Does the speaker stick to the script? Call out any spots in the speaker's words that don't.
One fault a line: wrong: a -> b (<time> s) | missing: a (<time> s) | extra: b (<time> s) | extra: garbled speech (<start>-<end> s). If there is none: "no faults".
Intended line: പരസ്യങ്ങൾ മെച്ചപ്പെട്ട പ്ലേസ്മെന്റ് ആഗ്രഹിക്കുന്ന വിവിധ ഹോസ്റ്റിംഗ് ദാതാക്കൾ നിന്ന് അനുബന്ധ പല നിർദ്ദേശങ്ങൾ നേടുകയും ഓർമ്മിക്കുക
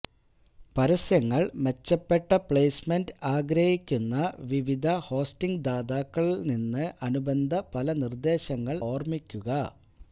missing: നേടുകയും (8.8 s)